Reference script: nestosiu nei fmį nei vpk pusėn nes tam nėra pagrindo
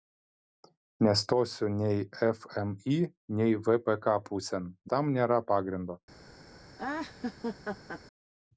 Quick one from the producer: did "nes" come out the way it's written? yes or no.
no